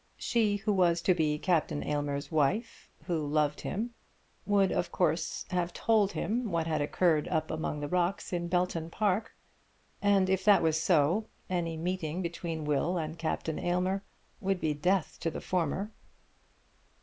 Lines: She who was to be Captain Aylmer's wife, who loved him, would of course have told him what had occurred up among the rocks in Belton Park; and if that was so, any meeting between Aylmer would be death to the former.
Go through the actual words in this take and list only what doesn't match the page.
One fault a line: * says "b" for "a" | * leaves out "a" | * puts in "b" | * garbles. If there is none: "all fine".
* puts in "Will and Captain"